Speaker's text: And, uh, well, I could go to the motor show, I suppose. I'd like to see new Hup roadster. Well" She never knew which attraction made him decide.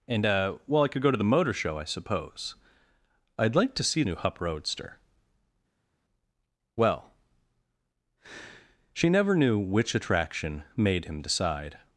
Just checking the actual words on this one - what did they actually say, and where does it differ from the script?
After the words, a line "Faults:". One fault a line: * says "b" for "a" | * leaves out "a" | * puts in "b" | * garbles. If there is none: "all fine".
And, uh, well, I could go to the motor show, I suppose. I'd like to see new Hup roadster. Well" She never knew which attraction made him decide.
Faults:
all fine